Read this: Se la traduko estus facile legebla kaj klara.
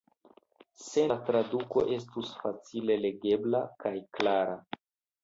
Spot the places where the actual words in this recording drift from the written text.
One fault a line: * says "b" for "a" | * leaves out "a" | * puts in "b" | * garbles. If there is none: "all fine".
all fine